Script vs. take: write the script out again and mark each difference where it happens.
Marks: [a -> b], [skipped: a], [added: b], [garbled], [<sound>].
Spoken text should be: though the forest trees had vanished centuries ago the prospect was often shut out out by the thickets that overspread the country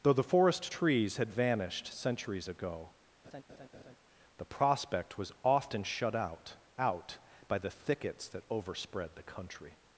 though the forest trees had vanished centuries ago [laugh] the prospect was often shut out out by the thickets that overspread the country